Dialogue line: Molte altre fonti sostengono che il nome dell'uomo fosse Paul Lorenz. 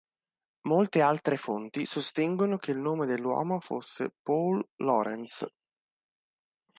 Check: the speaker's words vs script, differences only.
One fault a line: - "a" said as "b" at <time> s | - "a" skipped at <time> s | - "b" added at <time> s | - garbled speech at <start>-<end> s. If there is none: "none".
none